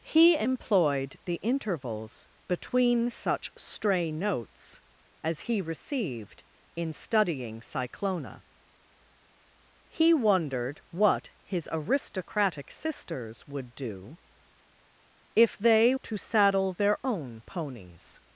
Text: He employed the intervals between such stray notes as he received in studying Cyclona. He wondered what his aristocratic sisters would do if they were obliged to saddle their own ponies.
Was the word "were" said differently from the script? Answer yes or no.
yes